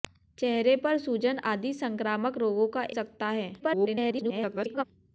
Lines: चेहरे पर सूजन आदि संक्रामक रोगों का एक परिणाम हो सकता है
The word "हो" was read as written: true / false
false